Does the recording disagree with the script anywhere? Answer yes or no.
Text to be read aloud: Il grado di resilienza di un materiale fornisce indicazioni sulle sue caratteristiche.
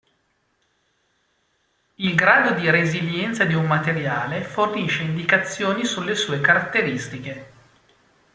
no